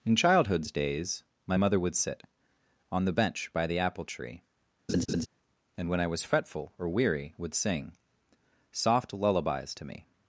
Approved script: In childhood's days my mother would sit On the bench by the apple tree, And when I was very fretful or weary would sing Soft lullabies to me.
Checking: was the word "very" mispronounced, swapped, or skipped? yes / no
yes